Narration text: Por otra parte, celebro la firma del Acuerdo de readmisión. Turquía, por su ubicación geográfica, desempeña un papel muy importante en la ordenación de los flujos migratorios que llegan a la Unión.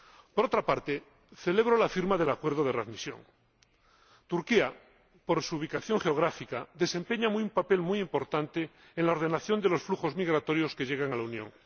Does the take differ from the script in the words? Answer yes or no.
no